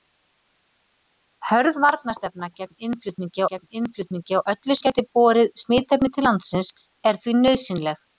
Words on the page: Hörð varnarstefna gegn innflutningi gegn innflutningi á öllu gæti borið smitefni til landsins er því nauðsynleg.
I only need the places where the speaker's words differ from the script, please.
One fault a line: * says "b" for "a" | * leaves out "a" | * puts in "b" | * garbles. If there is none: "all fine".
all fine